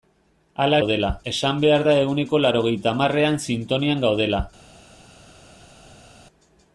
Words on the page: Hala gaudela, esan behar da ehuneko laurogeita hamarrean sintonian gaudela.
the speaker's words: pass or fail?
pass